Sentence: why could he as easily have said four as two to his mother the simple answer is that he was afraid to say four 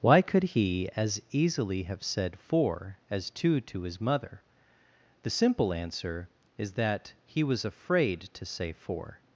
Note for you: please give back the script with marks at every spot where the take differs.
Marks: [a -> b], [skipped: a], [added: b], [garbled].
why could he as easily have said four as two to his mother the simple answer is that he was afraid to say four